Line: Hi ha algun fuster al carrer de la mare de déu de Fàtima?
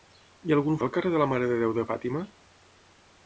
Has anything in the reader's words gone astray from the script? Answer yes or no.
yes